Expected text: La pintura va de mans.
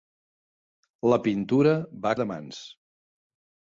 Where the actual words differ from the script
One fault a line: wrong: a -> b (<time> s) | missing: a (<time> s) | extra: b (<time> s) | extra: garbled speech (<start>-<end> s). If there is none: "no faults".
no faults